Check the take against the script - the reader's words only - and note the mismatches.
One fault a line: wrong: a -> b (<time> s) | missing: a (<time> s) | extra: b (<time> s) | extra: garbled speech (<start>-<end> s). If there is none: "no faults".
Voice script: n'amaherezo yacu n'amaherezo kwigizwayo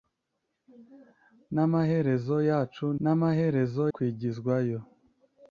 no faults